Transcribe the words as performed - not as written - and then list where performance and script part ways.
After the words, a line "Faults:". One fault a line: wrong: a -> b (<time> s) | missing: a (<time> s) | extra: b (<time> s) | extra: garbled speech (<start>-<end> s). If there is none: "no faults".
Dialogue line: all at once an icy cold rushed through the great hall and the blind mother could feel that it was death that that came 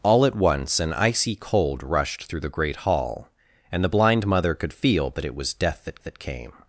all at once an icy cold rushed through the great hall and the blind mother could feel that it was death that that came
Faults:
no faults